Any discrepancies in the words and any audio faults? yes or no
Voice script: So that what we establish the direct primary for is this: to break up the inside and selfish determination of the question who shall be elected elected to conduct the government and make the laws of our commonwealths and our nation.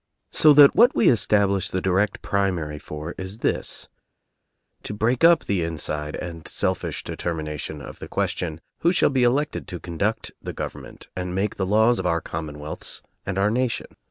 yes